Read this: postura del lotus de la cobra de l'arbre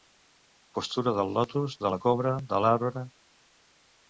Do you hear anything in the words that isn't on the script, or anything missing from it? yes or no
no